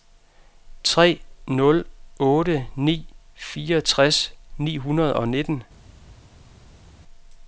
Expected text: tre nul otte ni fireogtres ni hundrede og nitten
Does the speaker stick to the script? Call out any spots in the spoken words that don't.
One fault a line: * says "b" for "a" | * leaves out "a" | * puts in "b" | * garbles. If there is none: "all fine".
all fine